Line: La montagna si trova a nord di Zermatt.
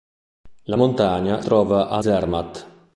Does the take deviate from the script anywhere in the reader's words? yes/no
yes